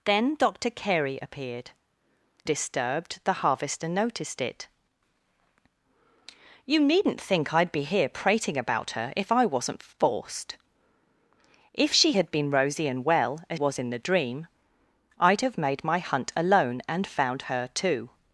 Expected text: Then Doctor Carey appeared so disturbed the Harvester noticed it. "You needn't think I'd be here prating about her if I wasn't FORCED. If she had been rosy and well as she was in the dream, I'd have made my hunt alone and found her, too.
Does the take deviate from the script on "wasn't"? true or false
false